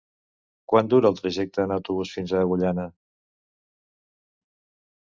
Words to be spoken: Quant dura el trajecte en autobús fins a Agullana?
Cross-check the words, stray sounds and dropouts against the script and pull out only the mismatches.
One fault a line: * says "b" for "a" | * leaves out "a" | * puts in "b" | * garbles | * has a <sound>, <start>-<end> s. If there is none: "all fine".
all fine